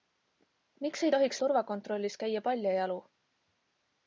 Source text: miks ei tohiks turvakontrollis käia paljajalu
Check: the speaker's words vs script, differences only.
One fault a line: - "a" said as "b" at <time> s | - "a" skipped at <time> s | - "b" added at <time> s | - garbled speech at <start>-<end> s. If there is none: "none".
none